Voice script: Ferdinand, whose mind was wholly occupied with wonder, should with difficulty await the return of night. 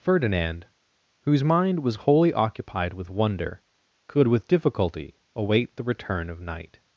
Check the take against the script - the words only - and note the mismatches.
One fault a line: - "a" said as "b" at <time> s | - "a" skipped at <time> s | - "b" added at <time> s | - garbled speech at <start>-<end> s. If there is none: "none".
- "should" said as "could" at 4.1 s